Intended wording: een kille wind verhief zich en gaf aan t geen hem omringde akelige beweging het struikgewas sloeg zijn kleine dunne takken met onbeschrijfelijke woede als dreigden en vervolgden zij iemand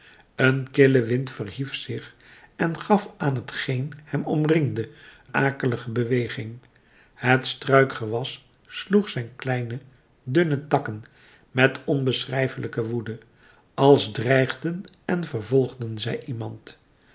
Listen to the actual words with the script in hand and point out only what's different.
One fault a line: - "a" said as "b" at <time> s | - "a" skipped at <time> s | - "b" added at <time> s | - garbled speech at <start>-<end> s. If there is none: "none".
none